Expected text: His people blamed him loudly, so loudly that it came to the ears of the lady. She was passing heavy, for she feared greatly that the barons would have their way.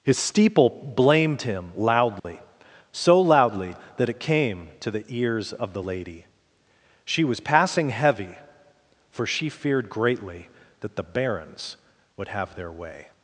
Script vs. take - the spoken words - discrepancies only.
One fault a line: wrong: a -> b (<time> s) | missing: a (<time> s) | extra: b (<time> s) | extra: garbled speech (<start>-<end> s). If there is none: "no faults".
wrong: people -> steeple (0.2 s)